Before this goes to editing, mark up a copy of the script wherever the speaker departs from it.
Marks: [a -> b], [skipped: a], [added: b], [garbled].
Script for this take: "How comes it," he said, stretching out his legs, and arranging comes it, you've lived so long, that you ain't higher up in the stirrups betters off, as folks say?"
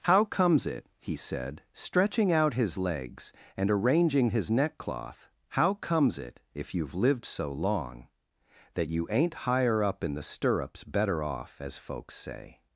"How comes it," he said, stretching out his legs, and arranging [added: his neckcloth how] comes it, [added: if] you've lived so long, that you ain't higher up in the stirrups [betters -> better] off, as folks say?"